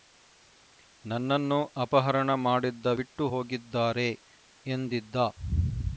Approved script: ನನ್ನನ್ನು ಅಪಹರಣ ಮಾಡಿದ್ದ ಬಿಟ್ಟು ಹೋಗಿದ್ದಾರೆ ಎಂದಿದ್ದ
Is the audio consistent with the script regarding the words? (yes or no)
yes